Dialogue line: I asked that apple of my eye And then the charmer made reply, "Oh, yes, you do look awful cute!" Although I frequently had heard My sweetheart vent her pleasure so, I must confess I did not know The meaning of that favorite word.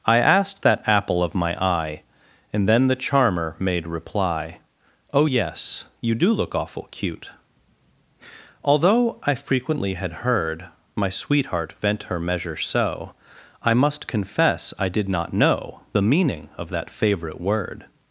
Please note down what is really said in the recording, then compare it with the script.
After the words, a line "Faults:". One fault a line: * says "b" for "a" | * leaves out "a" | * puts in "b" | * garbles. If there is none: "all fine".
I asked that apple of my eye And then the charmer made reply, "Oh, yes, you do look awful cute!" Although I frequently had heard My sweetheart vent her measure so, I must confess I did not know The meaning of that favorite word.
Faults:
* says "measure" for "pleasure"